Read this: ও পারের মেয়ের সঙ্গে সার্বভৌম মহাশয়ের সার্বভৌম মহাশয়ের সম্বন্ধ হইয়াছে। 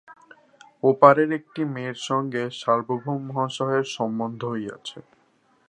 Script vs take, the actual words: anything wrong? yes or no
yes